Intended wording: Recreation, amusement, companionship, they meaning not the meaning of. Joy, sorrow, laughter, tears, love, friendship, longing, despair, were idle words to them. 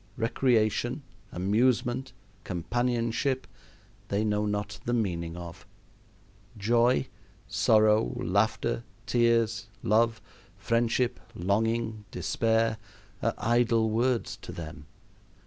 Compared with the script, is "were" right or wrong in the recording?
wrong